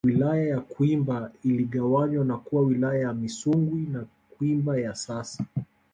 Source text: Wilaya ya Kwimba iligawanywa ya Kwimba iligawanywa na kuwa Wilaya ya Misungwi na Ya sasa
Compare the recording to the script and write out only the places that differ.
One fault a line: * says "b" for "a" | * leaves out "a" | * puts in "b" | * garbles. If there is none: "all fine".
* leaves out "ya Kwimba iligawanywa"
* puts in "Kwimba"